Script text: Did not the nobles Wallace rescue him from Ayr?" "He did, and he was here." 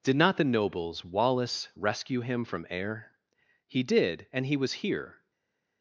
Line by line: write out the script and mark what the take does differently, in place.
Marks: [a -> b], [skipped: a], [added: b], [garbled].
Did not the nobles Wallace rescue him from Ayr?" "He did, and he was here."